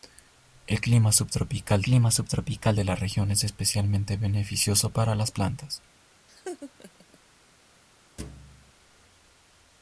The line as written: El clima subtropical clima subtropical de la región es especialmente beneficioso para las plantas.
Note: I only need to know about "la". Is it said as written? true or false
true